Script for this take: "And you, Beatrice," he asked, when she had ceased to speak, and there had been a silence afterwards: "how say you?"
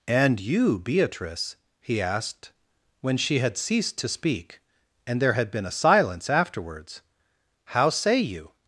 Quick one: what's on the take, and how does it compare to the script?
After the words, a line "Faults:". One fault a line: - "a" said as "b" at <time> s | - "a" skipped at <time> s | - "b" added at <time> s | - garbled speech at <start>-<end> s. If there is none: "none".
"And you, Beatrice," he asked, when she had ceased to speak, and there had been a silence afterwards: "how say you?"
Faults:
none